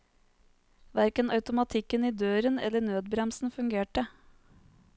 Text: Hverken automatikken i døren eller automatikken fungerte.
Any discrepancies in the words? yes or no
yes